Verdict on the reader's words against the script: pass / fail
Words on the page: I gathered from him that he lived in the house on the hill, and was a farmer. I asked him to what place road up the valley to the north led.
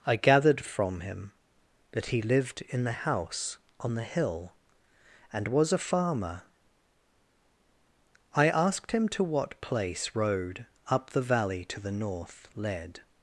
pass